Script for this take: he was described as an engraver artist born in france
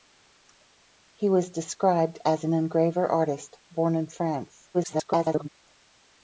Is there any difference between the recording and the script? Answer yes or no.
yes